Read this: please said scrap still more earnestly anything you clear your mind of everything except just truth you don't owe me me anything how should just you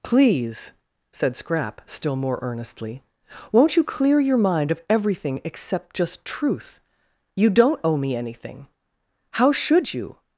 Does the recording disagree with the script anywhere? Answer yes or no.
yes